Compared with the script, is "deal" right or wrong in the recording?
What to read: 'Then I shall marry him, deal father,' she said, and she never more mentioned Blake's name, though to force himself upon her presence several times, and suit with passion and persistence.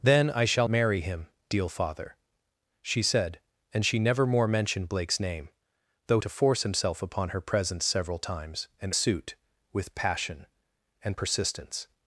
right